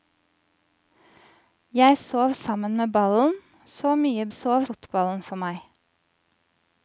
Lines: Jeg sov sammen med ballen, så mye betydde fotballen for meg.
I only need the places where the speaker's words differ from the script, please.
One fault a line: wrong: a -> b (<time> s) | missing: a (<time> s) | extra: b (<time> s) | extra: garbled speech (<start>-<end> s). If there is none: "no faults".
wrong: betydde -> sov (4.3 s)